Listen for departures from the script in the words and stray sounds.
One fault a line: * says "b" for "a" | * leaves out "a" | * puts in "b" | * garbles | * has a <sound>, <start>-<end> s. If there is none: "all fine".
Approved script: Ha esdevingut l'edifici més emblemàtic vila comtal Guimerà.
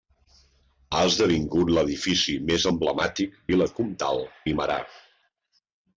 all fine